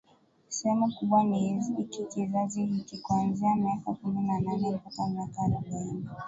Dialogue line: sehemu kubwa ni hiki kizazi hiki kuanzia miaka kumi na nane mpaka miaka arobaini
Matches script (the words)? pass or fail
pass